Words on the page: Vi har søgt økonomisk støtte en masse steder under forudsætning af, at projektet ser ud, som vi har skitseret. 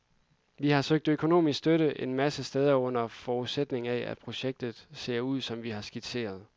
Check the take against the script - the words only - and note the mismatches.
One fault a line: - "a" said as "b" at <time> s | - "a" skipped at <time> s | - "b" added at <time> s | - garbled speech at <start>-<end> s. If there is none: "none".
none